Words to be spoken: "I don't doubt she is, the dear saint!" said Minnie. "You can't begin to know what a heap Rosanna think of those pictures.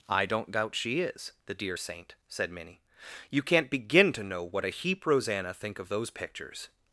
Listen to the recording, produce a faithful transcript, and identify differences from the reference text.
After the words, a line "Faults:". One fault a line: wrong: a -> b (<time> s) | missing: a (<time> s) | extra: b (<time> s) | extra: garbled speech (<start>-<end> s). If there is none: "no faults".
"I don't doubt she is, the dear saint!" said Minnie. "You can't begin to know what a heap Rosanna think of those pictures.
Faults:
no faults